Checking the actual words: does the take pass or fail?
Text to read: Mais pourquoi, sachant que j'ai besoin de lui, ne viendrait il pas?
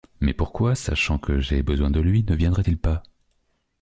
pass